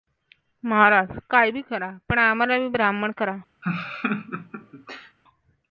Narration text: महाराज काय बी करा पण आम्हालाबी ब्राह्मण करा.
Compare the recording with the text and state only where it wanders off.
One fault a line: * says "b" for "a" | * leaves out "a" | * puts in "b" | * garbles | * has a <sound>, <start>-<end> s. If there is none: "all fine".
* has a laugh, 3.6-5.2 s